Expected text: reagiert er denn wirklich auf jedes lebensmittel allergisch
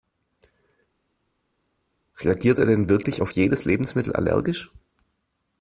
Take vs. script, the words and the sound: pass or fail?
pass